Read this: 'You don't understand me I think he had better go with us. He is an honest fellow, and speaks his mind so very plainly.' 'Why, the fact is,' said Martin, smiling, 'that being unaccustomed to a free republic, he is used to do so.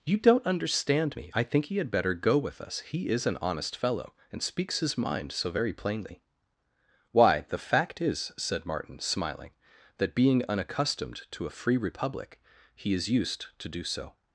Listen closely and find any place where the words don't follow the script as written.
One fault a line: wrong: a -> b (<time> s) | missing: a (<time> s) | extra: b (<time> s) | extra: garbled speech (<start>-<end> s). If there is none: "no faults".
no faults